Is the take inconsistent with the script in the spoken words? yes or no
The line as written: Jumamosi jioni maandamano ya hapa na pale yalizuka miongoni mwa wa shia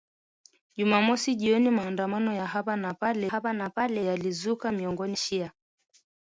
yes